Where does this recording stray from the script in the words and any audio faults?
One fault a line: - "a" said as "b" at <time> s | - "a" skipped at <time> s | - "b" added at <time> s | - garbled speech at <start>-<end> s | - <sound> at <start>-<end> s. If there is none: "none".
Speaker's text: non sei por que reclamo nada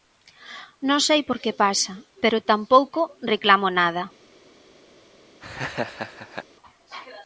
- "pasa pero tampouco" added at 1.6 s
- laugh at 5.4-6.5 s